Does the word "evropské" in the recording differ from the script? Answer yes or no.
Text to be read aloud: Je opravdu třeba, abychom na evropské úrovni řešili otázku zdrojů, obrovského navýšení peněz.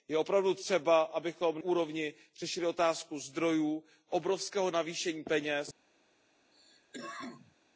yes